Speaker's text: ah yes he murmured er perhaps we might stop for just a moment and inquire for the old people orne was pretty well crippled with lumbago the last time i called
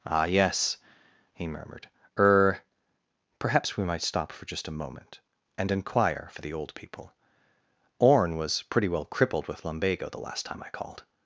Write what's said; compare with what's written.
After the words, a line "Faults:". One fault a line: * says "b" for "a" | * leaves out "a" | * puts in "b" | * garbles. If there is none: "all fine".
ah yes he murmured er perhaps we might stop for just a moment and inquire for the old people orne was pretty well crippled with lumbago the last time i called
Faults:
all fine